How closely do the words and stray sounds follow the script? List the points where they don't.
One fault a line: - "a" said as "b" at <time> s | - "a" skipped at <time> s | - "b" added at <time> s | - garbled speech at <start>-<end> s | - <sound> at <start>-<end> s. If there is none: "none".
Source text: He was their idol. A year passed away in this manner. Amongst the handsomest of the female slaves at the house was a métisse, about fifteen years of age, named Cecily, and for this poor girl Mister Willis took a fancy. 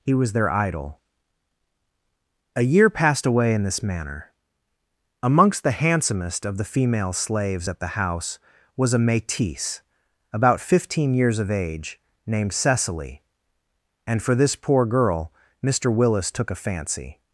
none